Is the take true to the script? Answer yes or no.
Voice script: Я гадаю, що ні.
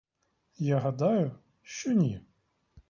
yes